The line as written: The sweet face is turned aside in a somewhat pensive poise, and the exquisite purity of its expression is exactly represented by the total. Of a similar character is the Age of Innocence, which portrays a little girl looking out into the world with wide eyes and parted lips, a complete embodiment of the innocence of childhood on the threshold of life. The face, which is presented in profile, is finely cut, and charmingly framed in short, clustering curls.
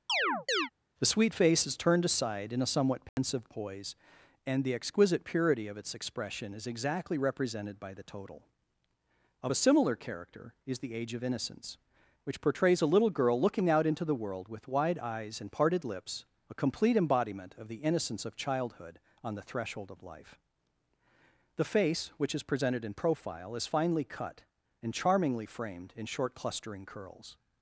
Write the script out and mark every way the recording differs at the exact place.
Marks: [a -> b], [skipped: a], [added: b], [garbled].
The sweet face is turned aside in a somewhat pensive poise, and the exquisite purity of its expression is exactly represented by the total. Of a similar character is the Age of Innocence, which portrays a little girl looking out into the world with wide eyes and parted lips, a complete embodiment of the innocence of childhood on the threshold of life. The face, which is presented in profile, is finely cut, and charmingly framed in short, clustering curls.